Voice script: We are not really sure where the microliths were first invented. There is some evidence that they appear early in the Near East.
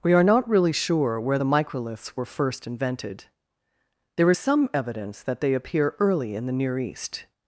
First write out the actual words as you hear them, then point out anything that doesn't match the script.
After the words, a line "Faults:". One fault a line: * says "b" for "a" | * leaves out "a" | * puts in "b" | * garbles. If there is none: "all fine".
We are not really sure where the microliths were first invented. There is some evidence that they appear early in the Near East.
Faults:
all fine